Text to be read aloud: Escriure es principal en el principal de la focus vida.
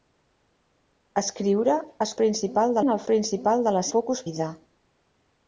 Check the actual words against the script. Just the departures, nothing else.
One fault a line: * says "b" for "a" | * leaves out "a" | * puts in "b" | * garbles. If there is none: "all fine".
all fine